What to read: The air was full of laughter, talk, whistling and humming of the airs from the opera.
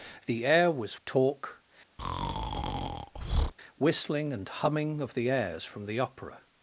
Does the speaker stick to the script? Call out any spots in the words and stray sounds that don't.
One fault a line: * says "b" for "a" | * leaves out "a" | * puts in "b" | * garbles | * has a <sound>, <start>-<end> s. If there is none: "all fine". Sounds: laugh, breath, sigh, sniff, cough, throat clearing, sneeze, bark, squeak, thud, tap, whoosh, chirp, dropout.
* leaves out "full of laughter"
* has a breath, 2.0-3.5 s